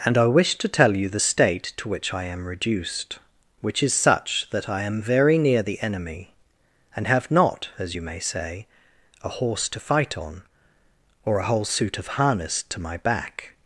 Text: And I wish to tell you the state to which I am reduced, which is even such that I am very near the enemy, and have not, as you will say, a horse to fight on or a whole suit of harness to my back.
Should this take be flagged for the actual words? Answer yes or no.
yes